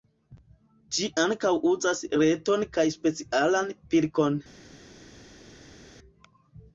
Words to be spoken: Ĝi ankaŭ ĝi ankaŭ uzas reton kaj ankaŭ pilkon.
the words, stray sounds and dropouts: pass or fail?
fail